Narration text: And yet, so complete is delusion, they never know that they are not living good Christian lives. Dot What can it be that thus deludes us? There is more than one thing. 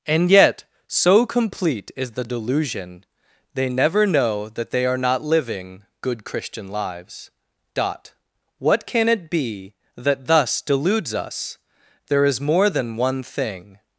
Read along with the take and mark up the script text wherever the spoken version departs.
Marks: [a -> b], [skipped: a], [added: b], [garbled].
And yet, so complete is [added: the] delusion, they never know that they are not living good Christian lives. Dot What can it be that thus deludes us? There is more than one thing.